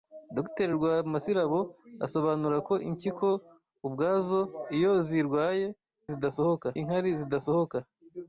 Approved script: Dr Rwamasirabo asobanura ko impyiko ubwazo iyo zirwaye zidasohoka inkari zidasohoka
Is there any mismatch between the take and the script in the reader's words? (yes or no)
no